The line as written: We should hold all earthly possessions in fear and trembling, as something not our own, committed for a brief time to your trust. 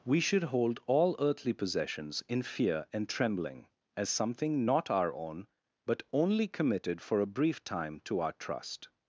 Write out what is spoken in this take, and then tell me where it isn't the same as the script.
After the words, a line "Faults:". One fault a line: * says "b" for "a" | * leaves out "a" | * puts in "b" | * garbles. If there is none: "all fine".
We should hold all earthly possessions in fear and trembling, as something not our own, but only committed for a brief time to our trust.
Faults:
* puts in "but only"
* says "our" for "your"